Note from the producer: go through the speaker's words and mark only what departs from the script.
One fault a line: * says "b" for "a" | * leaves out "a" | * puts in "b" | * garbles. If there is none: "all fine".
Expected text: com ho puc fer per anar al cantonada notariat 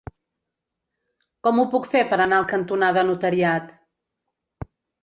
all fine